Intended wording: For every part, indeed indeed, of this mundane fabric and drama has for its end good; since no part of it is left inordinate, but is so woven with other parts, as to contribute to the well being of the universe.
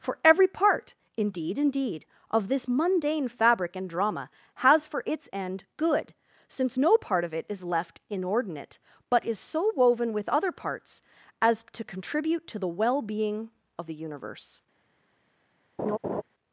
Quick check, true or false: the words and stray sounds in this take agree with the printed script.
false